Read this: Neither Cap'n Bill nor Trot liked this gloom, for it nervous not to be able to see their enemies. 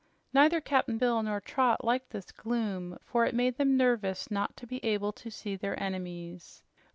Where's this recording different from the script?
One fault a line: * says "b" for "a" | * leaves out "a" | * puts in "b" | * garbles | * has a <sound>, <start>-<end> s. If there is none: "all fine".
* puts in "made them"